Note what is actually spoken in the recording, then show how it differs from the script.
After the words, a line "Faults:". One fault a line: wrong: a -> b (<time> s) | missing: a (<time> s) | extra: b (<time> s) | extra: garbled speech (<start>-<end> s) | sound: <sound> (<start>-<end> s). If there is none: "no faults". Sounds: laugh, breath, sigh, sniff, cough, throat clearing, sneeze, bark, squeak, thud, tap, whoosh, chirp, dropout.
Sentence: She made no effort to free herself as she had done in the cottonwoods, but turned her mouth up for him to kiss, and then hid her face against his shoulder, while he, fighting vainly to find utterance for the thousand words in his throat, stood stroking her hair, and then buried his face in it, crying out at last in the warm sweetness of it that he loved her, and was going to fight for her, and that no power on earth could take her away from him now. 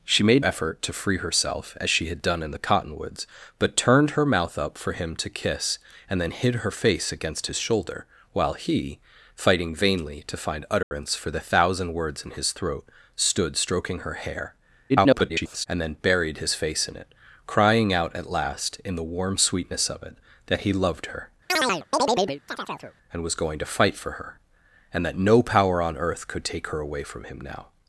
She made effort to free herself as she had done in the cottonwoods, but turned her mouth up for him to kiss, and then hid her face against his shoulder, while he, fighting vainly to find utterance for the thousand words in his throat, stood stroking her hair, [garbled] and then buried his face in it, crying out at last in the warm sweetness of it that he loved her, and was going to fight for her, and that no power on earth could take her away from him now.
Faults:
missing: no (0.4 s)
sound: dropout (10.8-10.9 s)
extra: garbled speech (14.9-15.7 s)
sound: chirp (21.5-23.0 s)